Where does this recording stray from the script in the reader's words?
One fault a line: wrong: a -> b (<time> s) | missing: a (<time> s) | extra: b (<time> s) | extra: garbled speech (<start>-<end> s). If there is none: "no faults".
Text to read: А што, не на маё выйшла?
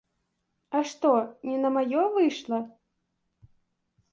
no faults